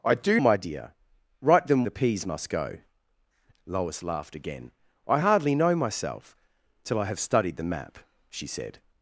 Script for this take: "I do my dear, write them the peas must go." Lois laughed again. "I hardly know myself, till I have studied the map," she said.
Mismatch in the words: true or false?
false